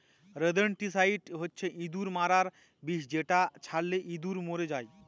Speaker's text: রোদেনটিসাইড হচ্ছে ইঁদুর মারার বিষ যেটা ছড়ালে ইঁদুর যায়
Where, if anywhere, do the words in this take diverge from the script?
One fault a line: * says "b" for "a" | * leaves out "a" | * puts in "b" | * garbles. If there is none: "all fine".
* puts in "মরে"